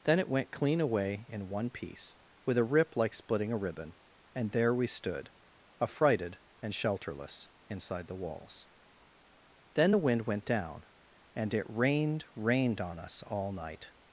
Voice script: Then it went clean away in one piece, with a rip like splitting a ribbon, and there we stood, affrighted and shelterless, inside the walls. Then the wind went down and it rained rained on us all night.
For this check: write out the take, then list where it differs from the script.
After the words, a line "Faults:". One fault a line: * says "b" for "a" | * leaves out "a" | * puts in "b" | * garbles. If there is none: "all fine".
Then it went clean away in one piece, with a rip like splitting a ribbon, and there we stood, affrighted and shelterless, inside the walls. Then the wind went down and it rained rained on us all night.
Faults:
all fine